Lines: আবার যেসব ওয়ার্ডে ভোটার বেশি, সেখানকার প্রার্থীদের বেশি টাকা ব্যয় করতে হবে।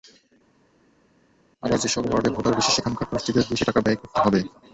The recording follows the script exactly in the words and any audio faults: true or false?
true